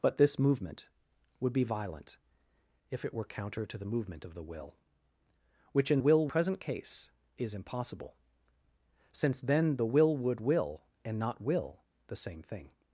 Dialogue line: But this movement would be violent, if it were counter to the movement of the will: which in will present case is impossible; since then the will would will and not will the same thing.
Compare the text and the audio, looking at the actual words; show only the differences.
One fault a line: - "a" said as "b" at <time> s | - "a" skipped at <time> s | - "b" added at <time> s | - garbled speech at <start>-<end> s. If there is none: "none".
none